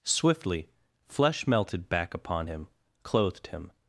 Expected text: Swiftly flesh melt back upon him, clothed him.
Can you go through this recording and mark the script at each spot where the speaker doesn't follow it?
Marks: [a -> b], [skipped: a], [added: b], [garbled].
Swiftly flesh [melt -> melted] back upon him, clothed him.